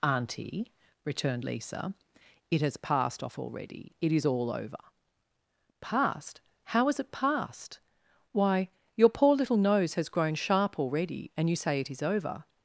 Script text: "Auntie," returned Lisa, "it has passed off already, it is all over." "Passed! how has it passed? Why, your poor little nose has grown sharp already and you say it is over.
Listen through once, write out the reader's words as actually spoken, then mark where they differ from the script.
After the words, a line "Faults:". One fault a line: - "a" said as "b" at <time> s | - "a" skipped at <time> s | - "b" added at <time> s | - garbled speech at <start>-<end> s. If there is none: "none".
"Auntie," returned Lisa, "it has passed off already, it is all over." "Passed! how has it passed? Why, your poor little nose has grown sharp already and you say it is over.
Faults:
none